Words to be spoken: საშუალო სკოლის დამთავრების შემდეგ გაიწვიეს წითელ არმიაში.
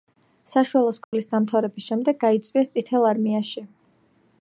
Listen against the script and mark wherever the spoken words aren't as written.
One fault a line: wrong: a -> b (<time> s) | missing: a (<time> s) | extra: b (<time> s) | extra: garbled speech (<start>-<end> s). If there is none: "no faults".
no faults